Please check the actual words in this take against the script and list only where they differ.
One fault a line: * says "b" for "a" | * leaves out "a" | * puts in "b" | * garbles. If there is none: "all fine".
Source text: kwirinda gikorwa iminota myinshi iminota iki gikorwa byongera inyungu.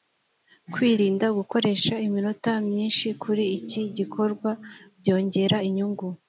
* says "gukoresha" for "gikorwa"
* says "kuri" for "iminota"